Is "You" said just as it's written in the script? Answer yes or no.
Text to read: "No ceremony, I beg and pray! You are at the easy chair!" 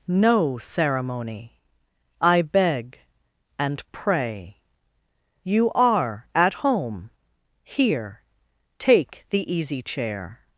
yes